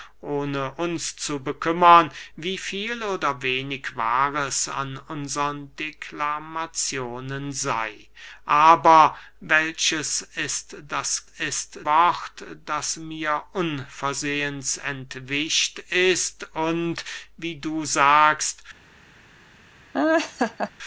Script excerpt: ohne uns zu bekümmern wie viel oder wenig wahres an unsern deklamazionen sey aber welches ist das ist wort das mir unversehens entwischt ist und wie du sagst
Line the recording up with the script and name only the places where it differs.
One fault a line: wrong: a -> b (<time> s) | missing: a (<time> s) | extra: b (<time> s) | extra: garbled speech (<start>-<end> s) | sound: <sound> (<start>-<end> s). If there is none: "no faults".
sound: laugh (19.9-20.7 s)